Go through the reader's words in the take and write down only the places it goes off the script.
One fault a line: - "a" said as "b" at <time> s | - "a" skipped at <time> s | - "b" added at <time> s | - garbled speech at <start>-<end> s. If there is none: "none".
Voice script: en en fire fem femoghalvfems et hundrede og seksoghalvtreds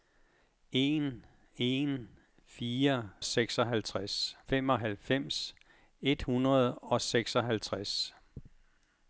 - "fem" said as "seksoghalvtreds" at 3.2 s